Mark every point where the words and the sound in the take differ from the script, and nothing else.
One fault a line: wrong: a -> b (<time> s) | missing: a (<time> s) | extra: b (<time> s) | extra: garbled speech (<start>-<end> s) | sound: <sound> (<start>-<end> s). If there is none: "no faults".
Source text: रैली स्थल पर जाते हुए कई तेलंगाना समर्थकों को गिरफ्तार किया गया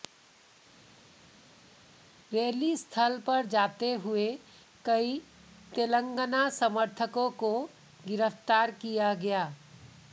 no faults